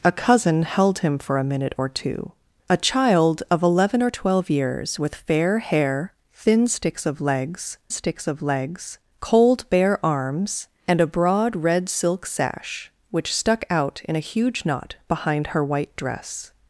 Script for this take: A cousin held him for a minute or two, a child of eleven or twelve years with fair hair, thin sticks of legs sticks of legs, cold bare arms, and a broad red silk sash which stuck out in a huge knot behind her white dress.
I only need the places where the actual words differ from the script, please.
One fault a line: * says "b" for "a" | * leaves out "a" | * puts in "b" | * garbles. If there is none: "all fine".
all fine